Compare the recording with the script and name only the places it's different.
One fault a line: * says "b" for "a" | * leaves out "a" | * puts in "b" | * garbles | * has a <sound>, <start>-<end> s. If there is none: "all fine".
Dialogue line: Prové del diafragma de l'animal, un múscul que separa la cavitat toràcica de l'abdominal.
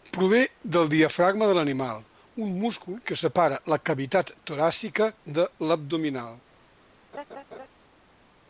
* has a laugh, 7.1-7.7 s